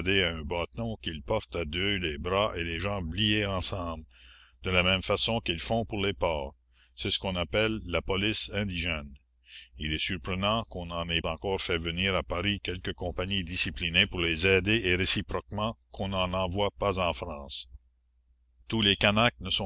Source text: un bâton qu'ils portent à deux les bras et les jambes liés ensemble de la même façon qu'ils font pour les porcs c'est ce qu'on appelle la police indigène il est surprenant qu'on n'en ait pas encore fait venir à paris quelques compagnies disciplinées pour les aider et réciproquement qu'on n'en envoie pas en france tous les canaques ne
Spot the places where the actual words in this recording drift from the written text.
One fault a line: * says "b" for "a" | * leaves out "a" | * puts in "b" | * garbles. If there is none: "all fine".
* leaves out "pas"